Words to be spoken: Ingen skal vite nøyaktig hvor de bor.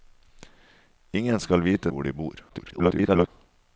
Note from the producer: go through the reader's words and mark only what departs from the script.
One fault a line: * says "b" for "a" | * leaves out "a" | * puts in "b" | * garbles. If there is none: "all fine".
* leaves out "nøyaktig"
* garbles